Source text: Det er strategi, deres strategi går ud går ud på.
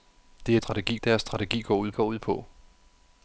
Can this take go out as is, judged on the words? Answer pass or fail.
pass